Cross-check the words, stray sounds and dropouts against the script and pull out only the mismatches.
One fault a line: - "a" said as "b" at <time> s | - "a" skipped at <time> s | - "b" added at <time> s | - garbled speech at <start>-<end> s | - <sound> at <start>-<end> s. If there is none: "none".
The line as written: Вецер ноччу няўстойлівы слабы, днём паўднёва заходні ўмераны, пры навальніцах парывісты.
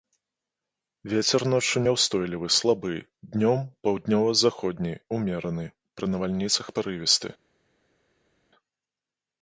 none